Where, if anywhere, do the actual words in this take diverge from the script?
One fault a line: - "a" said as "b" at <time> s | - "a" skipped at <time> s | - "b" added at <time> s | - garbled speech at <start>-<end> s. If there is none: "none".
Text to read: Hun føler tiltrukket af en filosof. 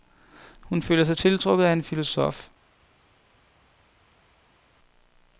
- "sig" added at 1.0 s